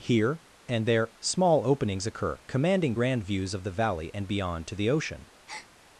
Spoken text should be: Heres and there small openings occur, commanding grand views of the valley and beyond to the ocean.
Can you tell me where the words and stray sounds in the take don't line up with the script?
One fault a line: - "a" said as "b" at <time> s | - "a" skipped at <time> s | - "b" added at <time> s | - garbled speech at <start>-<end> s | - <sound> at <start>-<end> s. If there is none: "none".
- "Heres" said as "Here" at 0.0 s
- breath at 5.5-5.7 s